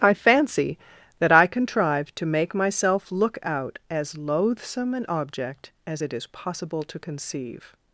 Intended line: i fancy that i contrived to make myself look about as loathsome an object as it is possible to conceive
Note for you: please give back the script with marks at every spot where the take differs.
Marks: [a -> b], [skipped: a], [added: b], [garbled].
i fancy that i contrived to make myself look [about -> out] as loathsome an object as it is possible to conceive